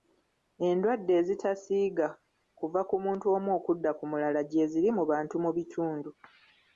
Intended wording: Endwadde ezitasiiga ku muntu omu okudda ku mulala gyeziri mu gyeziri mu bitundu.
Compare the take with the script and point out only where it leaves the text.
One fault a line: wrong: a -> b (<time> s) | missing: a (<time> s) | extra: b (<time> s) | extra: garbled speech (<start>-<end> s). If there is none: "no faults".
extra: kuva (2.6 s)
wrong: gyeziri -> bantu (5.1 s)